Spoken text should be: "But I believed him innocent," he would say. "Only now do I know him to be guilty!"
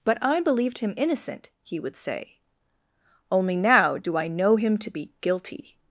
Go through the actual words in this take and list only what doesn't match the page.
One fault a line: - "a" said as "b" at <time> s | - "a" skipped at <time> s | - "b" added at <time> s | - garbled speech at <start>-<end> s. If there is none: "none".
none